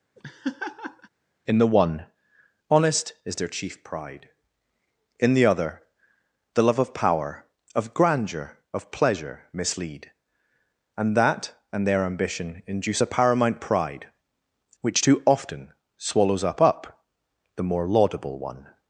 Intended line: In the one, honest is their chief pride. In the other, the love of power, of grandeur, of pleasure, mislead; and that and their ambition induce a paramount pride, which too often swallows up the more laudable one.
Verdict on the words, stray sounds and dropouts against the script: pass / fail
fail